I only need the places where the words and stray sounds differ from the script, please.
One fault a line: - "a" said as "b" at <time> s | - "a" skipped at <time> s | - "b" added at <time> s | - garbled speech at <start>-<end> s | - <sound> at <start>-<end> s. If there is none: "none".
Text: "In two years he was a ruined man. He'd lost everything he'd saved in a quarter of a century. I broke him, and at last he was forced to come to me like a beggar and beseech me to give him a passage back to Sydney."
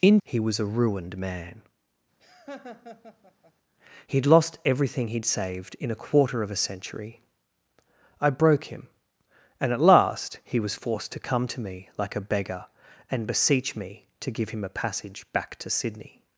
- "two years" skipped at 0.2 s
- laugh at 2.2-3.5 s